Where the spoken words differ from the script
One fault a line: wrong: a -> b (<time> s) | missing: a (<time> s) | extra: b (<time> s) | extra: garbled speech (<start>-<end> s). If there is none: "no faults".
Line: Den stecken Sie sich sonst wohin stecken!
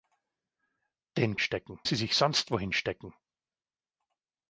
no faults